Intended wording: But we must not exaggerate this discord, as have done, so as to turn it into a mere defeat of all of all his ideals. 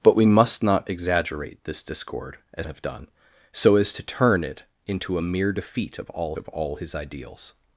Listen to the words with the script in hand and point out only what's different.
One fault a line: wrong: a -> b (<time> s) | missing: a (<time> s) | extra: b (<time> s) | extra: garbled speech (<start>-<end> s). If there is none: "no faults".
no faults